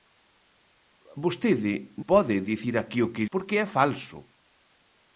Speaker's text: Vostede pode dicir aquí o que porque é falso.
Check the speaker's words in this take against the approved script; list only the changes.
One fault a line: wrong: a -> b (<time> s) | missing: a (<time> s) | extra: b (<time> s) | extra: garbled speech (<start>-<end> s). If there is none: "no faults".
no faults